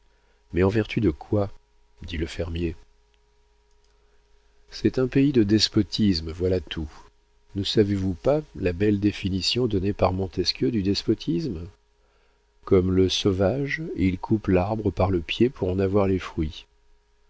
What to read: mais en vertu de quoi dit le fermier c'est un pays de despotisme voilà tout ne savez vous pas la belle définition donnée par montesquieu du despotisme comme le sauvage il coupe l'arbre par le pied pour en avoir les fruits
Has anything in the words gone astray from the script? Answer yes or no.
no